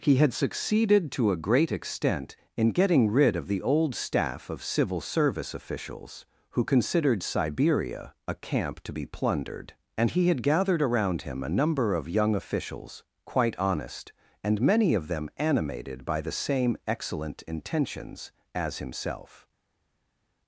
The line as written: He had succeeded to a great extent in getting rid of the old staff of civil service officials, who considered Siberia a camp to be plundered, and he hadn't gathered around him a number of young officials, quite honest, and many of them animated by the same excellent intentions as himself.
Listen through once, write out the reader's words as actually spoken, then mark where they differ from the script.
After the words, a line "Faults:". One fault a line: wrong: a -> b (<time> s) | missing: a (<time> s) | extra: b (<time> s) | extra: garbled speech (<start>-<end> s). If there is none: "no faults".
He had succeeded to a great extent in getting rid of the old staff of civil service officials, who considered Siberia a camp to be plundered, and he had gathered around him a number of young officials, quite honest, and many of them animated by the same excellent intentions as himself.
Faults:
wrong: hadn't -> had (10.3 s)